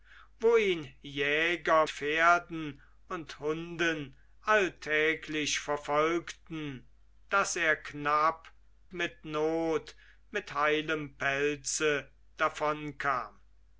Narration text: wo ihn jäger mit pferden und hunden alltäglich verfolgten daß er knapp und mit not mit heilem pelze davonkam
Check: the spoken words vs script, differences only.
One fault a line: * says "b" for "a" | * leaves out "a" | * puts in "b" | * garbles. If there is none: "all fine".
* leaves out "mit"
* leaves out "und"